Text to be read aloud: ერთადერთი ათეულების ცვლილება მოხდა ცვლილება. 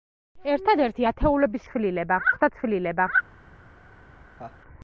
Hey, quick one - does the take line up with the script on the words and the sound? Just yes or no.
no